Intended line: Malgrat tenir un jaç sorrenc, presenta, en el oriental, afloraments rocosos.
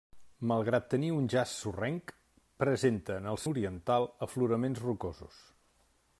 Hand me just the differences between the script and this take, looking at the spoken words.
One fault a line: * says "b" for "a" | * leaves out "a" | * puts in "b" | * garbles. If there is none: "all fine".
all fine